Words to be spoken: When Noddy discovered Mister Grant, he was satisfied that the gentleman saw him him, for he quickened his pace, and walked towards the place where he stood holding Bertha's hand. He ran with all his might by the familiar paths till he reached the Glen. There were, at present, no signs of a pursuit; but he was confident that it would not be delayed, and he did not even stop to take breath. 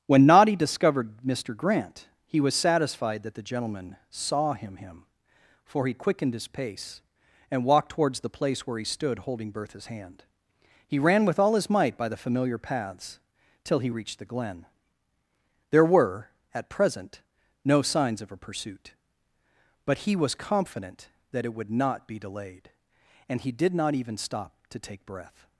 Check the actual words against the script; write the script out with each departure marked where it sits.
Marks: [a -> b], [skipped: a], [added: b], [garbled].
When Noddy discovered Mister Grant, he was satisfied that the gentleman saw him him, for he quickened his pace, and walked towards the place where he stood holding Bertha's hand. He ran with all his might by the familiar paths till he reached the Glen. There were, at present, no signs of a pursuit; but he was confident that it would not be delayed, and he did not even stop to take breath.